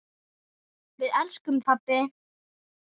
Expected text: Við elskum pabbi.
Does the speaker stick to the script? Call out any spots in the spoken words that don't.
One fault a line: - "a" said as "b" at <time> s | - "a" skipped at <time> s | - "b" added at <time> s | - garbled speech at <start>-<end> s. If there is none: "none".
none